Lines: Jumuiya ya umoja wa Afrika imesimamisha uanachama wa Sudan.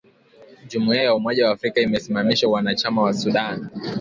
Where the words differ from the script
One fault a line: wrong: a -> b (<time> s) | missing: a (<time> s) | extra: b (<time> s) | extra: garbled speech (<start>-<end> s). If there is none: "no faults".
no faults